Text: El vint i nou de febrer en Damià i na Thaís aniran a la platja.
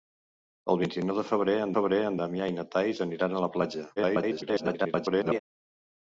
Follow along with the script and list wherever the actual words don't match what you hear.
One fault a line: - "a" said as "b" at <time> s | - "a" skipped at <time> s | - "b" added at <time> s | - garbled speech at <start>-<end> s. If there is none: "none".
- "febrer en" added at 1.8 s
- garbled speech at 4.0-5.4 s